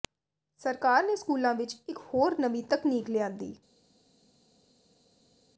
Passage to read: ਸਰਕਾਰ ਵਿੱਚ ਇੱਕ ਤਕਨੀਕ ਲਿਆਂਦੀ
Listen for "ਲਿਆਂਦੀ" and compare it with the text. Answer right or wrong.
right